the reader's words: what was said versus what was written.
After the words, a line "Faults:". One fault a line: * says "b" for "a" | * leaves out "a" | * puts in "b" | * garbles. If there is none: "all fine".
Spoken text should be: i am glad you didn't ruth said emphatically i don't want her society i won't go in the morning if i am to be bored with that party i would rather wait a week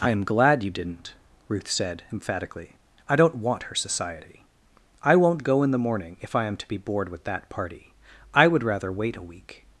i am glad you didn't ruth said emphatically i don't want her society i won't go in the morning if i am to be bored with that party i would rather wait a week
Faults:
all fine